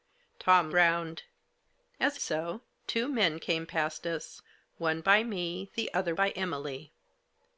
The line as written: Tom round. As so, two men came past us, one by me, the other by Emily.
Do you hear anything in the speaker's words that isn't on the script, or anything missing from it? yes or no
no